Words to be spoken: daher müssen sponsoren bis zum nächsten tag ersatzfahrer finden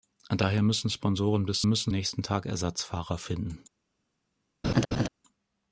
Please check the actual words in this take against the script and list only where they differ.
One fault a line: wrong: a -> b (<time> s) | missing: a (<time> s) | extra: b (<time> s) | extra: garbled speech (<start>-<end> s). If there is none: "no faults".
wrong: zum -> müssen (1.7 s)